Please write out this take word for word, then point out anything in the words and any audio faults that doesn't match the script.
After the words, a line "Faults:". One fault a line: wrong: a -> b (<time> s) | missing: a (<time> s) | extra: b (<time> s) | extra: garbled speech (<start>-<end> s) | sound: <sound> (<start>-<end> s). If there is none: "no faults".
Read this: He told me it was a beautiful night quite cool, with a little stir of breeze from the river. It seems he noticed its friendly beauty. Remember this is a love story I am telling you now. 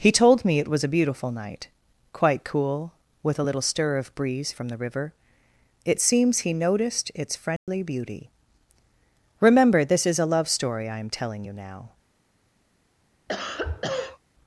He told me it was a beautiful night quite cool, with a little stir of breeze from the river. It seems he noticed its friendly beauty. Remember this is a love story I am telling you now.
Faults:
sound: dropout (7.6-7.7 s)
sound: cough (13.3-14.2 s)